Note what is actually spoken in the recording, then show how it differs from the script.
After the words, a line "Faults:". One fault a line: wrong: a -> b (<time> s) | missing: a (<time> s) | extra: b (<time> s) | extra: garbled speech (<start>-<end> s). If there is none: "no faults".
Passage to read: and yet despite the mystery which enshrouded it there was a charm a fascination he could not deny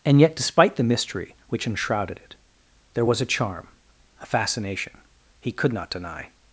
and yet despite the mystery which enshrouded it there was a charm a fascination he could not deny
Faults:
no faults